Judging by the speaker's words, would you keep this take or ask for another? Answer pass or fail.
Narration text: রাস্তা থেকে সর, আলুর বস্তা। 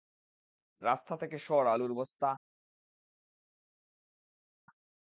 pass